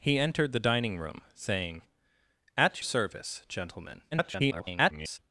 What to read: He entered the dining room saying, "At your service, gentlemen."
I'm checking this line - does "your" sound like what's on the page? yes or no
no